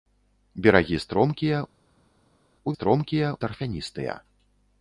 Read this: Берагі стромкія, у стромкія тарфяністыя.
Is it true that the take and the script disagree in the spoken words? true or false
false